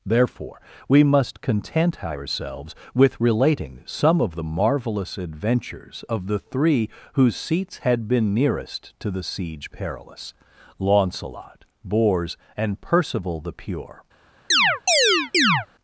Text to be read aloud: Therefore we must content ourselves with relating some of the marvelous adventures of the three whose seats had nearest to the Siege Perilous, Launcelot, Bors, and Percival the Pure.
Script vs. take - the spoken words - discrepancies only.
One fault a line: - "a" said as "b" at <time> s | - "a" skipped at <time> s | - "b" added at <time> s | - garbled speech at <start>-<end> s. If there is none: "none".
- "been" added at 8.1 s